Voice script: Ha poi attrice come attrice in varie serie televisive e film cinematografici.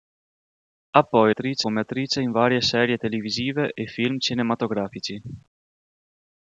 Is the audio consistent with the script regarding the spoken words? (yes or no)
yes